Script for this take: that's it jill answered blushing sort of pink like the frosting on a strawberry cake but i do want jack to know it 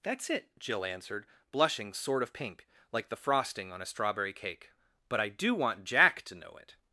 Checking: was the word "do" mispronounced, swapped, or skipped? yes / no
no